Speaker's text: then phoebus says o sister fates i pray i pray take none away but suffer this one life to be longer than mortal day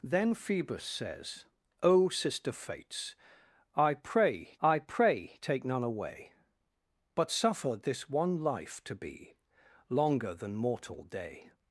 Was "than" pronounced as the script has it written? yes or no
yes